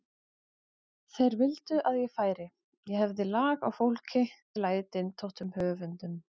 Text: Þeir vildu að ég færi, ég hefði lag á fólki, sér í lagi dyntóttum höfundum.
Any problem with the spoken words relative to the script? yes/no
yes